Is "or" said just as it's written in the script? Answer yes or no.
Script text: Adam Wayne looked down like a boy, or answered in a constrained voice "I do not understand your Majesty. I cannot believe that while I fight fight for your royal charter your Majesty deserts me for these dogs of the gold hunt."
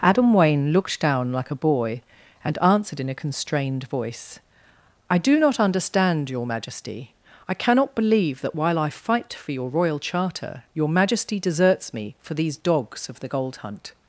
no